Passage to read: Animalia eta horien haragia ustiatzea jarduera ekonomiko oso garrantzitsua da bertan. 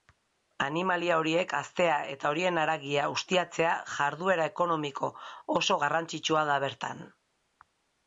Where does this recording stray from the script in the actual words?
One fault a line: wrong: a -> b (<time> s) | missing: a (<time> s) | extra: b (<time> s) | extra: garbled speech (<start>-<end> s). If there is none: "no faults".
extra: horiek haztea (1.2 s)